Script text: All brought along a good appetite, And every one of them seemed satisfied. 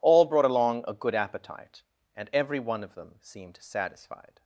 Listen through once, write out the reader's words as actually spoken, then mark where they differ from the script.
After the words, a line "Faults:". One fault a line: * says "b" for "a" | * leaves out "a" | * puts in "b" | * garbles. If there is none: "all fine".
All brought along a good appetite, And every one of them seemed satisfied.
Faults:
all fine